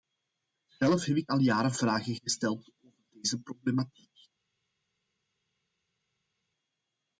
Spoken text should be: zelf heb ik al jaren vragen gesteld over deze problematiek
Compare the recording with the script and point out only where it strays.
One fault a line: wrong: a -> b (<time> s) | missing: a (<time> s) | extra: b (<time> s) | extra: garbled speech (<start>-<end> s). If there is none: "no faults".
no faults